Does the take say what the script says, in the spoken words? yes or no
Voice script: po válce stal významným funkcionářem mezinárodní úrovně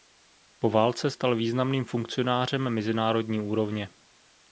yes